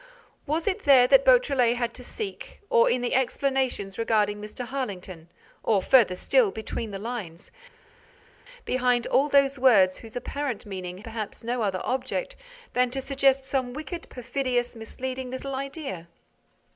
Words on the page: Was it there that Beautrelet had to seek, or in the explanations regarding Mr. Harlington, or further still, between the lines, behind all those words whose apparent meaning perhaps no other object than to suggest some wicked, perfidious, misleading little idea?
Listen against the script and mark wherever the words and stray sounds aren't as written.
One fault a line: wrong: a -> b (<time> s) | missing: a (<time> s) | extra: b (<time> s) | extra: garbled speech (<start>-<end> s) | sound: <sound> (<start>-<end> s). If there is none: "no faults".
no faults